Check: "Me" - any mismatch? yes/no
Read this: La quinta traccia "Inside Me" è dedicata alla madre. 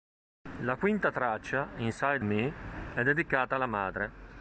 no